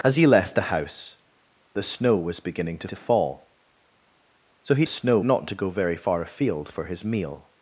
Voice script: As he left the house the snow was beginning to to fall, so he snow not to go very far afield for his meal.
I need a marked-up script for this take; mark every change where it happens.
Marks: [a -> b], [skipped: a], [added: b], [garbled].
As he left the house the snow was beginning to to fall, so he snow not to go very far afield for his meal.